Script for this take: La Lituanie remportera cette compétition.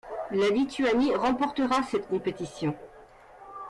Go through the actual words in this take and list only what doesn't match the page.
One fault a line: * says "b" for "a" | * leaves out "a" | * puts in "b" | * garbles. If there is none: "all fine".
all fine